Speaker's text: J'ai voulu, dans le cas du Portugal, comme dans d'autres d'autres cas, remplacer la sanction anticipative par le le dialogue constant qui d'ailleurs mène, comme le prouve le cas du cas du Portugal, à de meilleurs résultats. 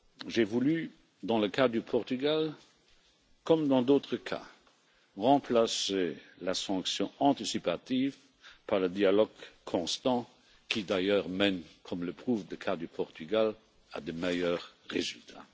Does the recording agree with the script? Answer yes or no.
no